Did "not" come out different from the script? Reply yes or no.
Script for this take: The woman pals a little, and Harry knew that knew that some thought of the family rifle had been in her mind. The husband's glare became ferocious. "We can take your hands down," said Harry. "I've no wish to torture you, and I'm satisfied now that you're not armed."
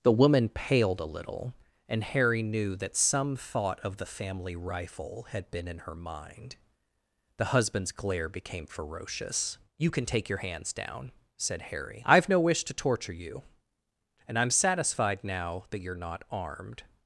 no